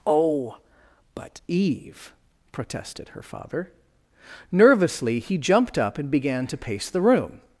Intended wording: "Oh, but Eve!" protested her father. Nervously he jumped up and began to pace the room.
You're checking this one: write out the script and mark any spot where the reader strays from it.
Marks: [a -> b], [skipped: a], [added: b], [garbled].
"Oh, but Eve!" protested her father. Nervously he jumped up and began to pace the room.